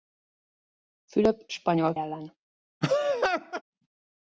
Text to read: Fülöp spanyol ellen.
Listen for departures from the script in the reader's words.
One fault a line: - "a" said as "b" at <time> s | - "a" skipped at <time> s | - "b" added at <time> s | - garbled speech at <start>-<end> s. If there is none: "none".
none